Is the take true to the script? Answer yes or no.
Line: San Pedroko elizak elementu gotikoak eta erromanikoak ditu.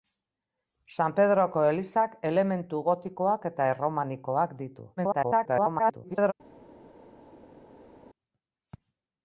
no